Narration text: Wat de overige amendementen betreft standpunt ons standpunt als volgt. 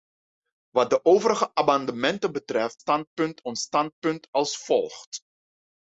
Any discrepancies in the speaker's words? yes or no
no